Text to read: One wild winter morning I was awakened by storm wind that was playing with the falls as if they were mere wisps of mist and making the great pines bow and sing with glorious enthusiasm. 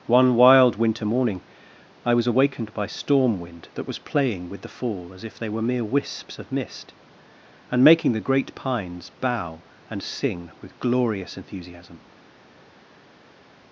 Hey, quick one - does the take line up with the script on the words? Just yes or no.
no